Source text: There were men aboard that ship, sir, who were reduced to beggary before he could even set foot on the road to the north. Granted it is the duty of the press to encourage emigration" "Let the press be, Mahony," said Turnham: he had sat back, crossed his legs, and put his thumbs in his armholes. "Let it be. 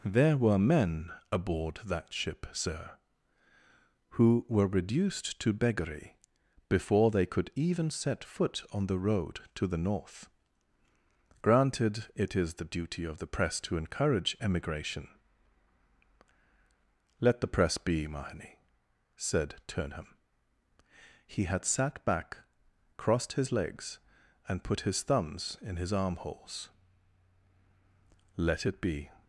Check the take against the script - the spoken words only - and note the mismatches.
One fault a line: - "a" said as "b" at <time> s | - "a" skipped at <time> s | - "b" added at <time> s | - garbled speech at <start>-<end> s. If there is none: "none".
- "he" said as "they" at 7.1 s